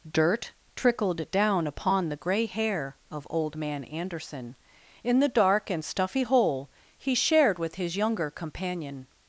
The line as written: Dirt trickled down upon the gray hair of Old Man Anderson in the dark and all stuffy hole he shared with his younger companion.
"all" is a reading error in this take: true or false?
true